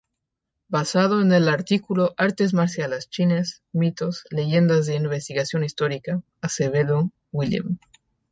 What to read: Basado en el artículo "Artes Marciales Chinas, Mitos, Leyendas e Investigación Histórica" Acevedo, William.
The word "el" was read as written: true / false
true